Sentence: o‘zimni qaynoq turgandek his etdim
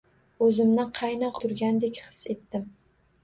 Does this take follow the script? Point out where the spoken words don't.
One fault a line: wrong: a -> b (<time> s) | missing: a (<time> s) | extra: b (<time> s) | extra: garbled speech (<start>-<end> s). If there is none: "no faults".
no faults